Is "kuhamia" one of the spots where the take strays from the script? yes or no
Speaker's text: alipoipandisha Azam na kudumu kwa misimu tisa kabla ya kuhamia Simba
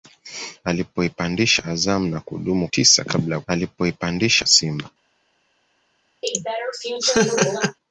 yes